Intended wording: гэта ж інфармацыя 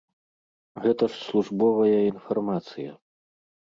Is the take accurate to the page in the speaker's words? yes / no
no